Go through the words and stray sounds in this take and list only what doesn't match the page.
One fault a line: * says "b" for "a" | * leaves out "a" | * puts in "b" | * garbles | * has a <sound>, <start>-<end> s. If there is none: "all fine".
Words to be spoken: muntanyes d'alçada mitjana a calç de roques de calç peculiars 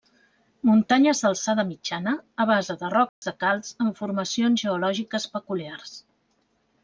* says "base" for "calç"
* has a dropout, 3.1-3.2 s
* puts in "amb formacions geològiques"